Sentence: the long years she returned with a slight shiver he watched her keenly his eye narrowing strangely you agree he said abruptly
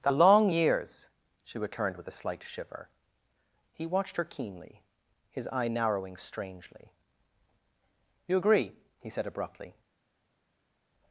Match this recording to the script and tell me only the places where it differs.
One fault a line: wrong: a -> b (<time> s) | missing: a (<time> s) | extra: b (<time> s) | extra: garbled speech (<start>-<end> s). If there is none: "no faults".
no faults